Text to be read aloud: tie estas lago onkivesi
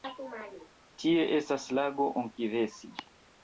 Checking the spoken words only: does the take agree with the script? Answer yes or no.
yes